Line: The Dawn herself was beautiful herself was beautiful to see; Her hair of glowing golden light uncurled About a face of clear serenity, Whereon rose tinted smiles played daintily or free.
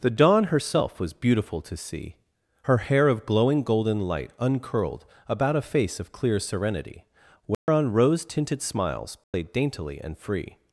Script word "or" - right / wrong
wrong